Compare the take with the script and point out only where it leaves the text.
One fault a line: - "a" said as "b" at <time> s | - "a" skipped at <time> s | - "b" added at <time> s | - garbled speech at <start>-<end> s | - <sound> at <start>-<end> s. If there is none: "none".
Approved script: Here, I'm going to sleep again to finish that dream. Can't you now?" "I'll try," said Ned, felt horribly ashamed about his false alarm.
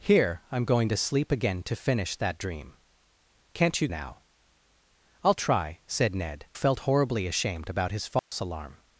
- dropout at 8.2-8.3 s